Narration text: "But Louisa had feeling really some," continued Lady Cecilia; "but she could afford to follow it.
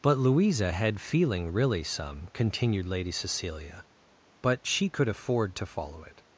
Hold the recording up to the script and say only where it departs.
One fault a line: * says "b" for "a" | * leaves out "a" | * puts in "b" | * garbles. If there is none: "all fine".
all fine